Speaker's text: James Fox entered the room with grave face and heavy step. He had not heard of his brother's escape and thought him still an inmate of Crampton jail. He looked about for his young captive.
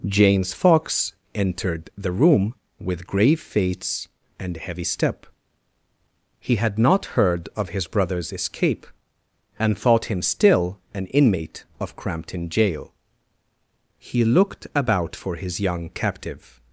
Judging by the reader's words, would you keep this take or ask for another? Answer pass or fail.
pass